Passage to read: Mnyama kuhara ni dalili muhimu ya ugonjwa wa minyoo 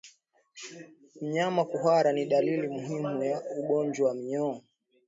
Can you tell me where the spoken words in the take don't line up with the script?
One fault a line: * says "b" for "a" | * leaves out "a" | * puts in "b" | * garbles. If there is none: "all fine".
all fine